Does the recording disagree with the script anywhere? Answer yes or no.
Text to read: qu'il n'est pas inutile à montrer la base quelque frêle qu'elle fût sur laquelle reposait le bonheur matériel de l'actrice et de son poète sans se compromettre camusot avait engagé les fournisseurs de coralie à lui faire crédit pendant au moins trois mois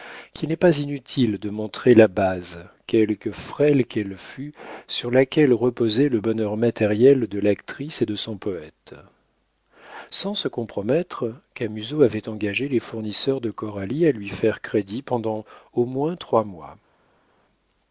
yes